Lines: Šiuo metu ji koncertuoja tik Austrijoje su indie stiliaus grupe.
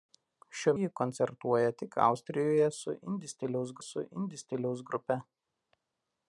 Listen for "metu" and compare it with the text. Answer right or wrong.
wrong